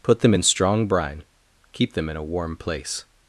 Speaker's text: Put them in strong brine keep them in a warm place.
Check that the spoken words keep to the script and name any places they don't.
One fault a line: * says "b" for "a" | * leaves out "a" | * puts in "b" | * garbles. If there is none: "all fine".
all fine